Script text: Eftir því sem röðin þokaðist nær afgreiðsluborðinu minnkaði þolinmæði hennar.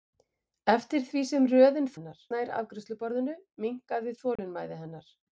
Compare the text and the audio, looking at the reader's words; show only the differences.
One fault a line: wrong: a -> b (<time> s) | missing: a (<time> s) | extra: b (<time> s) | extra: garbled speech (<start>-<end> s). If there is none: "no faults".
wrong: þokaðist -> hennar (2.0 s)